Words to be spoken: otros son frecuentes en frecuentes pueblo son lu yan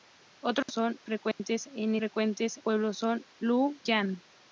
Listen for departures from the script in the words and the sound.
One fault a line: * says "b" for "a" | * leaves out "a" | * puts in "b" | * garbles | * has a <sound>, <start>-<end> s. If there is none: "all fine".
* has a dropout, 0.6-0.7 s
* has a dropout, 1.3-1.4 s